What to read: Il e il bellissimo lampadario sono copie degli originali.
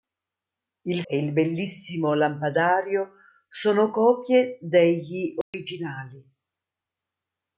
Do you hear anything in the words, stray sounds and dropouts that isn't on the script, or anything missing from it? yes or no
yes